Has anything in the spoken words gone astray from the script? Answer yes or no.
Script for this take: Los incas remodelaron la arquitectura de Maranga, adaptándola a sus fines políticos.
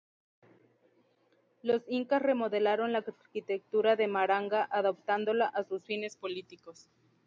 no